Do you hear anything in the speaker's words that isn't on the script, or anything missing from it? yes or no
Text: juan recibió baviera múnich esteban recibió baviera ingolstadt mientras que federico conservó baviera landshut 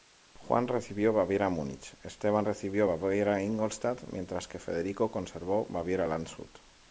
no